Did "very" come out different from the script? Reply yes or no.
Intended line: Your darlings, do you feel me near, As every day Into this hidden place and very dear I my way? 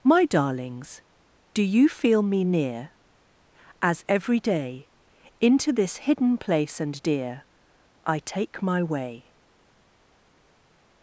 yes